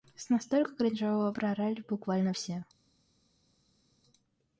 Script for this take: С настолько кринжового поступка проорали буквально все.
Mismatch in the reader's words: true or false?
true